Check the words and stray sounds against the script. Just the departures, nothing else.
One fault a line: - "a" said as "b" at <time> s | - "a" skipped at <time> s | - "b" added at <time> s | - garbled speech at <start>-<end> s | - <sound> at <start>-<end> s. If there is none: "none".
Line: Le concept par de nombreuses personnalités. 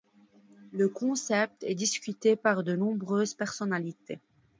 - "est discuté" added at 1.6 s